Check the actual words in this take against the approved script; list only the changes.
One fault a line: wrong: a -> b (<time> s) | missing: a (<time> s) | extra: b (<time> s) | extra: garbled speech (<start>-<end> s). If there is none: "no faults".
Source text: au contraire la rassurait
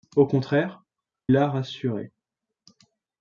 no faults